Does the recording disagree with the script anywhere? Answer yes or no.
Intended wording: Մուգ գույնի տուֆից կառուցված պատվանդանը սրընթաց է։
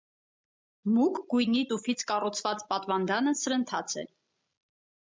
no